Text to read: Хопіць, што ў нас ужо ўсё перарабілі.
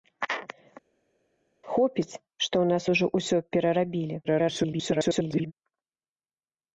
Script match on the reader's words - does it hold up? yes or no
no